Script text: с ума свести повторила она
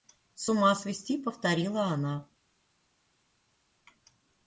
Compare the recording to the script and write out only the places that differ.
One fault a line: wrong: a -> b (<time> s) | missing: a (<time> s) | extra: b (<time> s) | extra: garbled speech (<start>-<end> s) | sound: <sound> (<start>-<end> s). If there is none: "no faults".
no faults